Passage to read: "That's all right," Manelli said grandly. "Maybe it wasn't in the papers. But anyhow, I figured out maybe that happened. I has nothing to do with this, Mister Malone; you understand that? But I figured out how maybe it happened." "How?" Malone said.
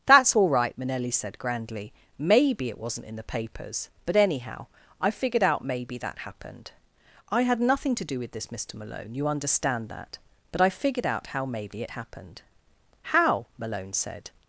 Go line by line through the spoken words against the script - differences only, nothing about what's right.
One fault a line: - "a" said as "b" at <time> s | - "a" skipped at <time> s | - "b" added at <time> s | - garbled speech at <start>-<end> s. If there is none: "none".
- "has" said as "had" at 7.4 s